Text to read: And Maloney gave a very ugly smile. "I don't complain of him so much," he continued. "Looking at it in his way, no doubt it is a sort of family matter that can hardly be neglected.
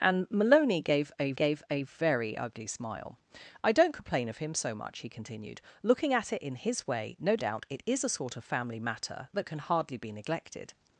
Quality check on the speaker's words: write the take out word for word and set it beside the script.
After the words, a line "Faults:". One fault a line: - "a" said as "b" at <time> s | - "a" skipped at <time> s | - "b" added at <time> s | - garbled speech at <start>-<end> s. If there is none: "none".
And Maloney gave a gave a very ugly smile. "I don't complain of him so much," he continued. "Looking at it in his way, no doubt it is a sort of family matter that can hardly be neglected.
Faults:
- "gave a" added at 1.3 s